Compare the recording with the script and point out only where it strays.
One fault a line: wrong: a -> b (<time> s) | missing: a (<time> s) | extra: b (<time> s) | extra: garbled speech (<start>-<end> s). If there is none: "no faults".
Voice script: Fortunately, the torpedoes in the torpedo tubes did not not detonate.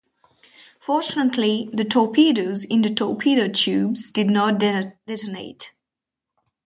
missing: not (4.6 s)